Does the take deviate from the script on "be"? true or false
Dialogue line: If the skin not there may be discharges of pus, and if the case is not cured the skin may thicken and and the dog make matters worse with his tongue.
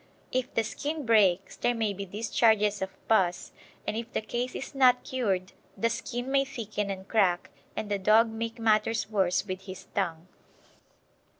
false